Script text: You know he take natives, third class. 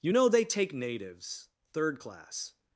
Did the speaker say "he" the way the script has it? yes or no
no